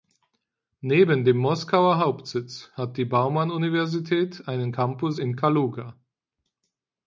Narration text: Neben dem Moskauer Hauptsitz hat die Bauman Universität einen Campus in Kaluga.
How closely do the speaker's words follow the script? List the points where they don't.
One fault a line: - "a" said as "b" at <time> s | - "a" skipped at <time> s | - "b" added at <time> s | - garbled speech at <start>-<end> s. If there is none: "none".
none